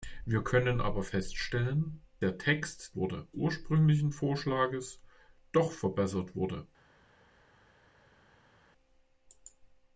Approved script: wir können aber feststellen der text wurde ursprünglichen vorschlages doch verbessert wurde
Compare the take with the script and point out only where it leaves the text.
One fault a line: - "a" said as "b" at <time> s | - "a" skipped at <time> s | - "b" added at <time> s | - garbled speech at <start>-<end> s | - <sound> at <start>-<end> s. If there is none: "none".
none